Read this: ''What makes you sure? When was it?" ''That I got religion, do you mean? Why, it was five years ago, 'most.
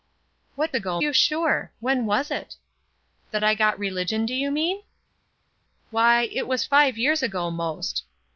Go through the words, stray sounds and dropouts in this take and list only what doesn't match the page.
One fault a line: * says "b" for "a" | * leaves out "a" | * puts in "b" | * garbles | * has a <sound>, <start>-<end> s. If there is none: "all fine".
* says "ago" for "makes"